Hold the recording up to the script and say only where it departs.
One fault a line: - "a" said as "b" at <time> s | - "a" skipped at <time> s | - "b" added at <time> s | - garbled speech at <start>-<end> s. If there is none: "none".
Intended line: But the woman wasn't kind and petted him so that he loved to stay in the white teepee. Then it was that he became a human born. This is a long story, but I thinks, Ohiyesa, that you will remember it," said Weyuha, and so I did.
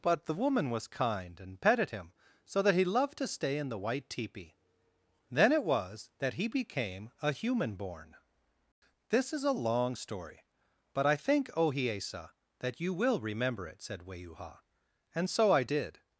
- "wasn't" said as "was" at 0.7 s
- "thinks" said as "think" at 11.2 s